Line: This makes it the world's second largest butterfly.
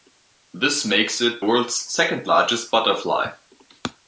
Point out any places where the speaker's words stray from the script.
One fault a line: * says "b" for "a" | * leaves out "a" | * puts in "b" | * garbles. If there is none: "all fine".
* leaves out "the"